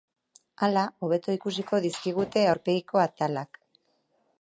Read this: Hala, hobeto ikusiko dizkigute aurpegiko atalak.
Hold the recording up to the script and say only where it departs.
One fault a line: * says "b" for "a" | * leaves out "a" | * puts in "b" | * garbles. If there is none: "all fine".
all fine